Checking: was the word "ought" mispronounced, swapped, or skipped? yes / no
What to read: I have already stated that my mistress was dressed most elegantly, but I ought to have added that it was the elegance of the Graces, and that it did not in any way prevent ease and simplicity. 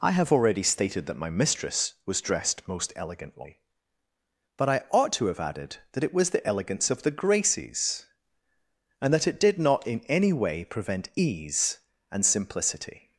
no